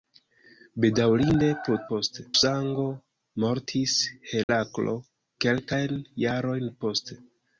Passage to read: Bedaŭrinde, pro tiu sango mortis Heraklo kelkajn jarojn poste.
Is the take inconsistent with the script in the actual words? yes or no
yes